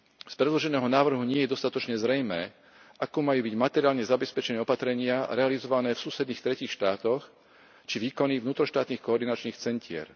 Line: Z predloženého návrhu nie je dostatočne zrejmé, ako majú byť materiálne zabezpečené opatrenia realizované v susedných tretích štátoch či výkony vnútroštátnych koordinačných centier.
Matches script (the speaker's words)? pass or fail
pass